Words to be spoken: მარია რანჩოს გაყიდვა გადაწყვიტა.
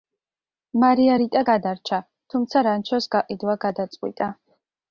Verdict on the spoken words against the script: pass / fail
fail